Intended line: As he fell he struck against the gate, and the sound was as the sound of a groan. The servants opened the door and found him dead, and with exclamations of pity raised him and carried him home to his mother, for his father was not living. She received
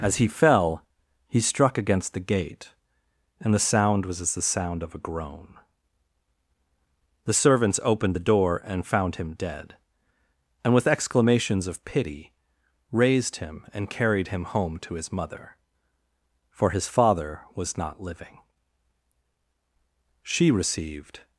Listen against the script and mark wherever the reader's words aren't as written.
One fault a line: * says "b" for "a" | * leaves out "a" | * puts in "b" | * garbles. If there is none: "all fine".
all fine